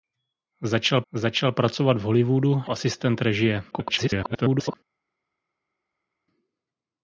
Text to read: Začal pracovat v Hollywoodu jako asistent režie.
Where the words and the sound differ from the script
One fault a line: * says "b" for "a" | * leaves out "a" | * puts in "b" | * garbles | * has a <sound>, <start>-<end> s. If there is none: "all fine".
* puts in "začal"
* leaves out "jako"
* garbles